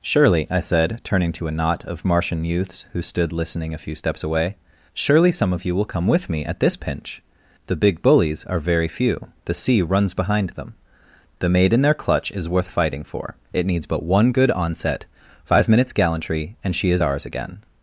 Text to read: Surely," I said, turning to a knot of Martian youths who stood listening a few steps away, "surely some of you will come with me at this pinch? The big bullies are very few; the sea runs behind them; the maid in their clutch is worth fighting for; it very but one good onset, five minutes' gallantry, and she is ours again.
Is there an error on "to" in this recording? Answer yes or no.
no